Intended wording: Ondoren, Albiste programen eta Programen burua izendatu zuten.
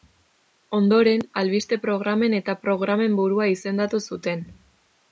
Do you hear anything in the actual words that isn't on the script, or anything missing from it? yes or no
no